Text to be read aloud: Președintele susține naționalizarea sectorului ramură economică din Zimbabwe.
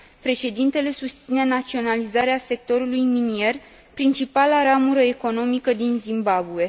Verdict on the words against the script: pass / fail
fail